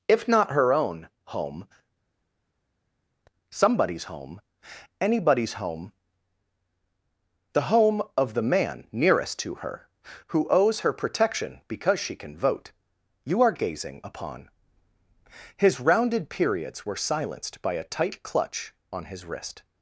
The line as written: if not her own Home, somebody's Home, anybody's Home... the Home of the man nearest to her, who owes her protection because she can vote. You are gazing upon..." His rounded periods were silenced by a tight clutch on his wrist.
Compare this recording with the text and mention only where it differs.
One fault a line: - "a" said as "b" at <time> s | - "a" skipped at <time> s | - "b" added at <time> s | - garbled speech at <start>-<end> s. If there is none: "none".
none